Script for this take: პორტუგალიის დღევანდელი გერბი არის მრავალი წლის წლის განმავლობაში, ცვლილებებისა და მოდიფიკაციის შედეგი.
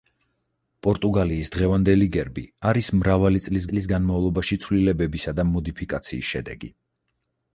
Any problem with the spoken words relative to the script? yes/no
no